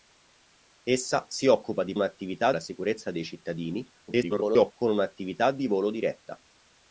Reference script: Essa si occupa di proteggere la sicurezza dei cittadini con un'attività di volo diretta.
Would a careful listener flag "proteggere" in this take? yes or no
yes